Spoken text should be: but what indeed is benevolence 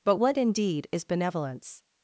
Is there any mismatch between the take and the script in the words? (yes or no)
no